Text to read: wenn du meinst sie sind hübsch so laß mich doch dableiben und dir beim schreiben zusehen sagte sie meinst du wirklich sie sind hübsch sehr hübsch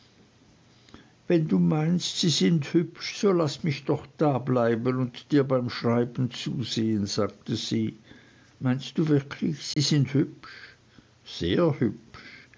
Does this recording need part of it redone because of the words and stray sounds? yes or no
yes